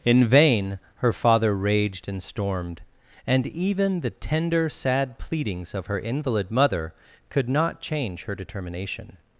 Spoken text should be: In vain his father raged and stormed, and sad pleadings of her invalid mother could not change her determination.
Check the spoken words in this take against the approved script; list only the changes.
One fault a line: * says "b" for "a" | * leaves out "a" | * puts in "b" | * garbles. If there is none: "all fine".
* says "her" for "his"
* puts in "even the tender"